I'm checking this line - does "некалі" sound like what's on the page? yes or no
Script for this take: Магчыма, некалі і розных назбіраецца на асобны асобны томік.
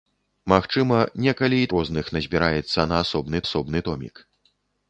yes